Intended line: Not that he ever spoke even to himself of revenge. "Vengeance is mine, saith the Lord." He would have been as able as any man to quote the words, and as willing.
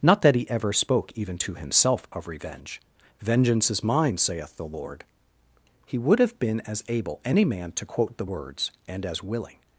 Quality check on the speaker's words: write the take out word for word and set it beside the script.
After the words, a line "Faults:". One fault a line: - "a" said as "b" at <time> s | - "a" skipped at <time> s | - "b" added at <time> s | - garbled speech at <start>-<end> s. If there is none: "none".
Not that he ever spoke even to himself of revenge. "Vengeance is mine, saith the Lord." He would have been as able any man to quote the words, and as willing.
Faults:
- "as" skipped at 7.2 s